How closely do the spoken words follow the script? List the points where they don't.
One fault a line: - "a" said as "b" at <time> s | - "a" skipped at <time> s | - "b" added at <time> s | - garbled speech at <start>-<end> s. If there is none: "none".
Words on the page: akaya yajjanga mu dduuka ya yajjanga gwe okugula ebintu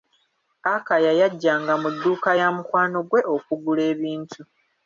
- "yajjanga" said as "mukwano" at 2.5 s